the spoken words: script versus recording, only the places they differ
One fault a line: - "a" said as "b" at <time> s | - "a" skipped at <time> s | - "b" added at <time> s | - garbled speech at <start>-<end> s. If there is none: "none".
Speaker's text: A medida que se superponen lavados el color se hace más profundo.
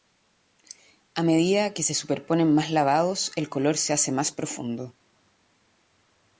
- "más" added at 2.5 s